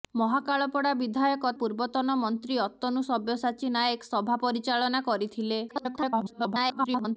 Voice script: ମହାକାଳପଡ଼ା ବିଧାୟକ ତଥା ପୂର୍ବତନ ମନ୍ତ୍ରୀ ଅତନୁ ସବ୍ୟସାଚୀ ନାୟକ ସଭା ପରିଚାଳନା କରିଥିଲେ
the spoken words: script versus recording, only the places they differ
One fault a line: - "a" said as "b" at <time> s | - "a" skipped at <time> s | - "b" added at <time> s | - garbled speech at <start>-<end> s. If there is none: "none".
- "ତଥା" skipped at 1.5 s
- garbled speech at 5.7-7.2 s